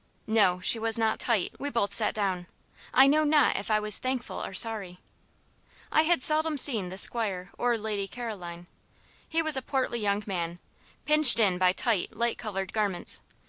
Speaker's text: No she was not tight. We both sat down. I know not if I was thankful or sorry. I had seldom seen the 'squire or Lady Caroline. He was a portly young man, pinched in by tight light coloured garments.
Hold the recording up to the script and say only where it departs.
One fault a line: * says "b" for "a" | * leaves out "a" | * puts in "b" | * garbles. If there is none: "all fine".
all fine